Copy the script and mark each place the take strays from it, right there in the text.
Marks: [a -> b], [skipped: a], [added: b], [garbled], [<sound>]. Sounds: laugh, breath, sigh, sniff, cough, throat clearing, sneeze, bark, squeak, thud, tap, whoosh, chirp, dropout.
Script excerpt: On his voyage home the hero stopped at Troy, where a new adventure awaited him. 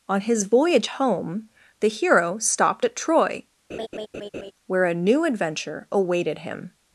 On his voyage home the hero stopped at Troy, [laugh] where a new adventure awaited him.